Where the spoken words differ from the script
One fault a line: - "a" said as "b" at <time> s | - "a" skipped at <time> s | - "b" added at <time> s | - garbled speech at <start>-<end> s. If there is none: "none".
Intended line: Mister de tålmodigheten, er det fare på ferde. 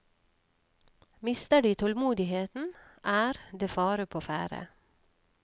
none